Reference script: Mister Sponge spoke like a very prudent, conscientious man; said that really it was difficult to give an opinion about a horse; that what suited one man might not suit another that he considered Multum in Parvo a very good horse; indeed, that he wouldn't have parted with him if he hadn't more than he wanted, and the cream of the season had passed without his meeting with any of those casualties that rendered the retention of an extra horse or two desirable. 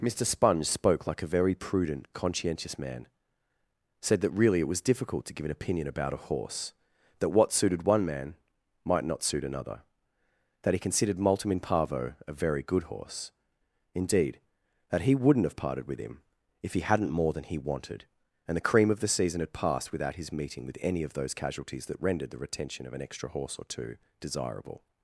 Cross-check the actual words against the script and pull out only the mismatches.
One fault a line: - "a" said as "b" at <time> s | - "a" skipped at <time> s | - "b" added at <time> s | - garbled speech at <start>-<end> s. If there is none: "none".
none